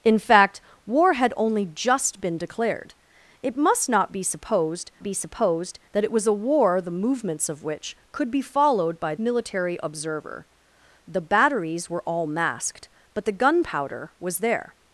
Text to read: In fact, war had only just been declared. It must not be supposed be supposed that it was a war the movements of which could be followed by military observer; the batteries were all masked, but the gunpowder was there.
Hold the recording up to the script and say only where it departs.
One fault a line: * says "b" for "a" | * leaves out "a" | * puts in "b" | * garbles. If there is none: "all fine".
all fine